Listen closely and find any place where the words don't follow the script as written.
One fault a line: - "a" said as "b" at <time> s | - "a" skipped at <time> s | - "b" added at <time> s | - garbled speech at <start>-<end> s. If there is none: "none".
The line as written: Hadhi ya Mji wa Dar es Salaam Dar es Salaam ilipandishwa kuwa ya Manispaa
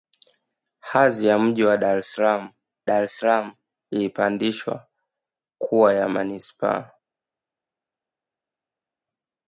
none